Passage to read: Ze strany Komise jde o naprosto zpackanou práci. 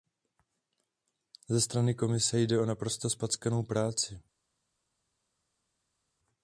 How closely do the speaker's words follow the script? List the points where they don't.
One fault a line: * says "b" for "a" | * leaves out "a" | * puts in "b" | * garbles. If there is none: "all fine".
all fine